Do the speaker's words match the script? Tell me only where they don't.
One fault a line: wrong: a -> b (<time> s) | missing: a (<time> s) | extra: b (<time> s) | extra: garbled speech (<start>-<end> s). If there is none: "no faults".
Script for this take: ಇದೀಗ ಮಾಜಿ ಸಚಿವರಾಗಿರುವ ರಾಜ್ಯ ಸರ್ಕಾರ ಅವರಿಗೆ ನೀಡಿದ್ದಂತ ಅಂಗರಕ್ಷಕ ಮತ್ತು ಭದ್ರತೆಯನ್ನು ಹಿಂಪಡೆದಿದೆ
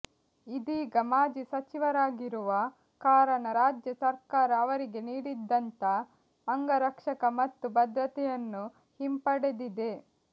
extra: ಕಾರಣ (3.0 s)